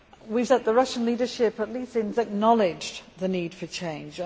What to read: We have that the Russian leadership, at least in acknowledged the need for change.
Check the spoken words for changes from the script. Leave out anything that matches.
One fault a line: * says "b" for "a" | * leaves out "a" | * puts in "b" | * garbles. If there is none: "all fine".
all fine